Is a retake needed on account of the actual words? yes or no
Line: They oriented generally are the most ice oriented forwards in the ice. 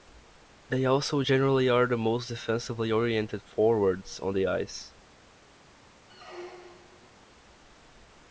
yes